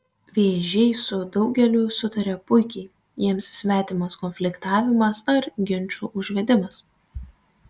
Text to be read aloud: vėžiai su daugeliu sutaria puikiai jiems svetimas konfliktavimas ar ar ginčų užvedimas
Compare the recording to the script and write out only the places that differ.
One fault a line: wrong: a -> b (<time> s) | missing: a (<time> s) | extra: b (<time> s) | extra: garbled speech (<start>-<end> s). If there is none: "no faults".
missing: ar (5.5 s)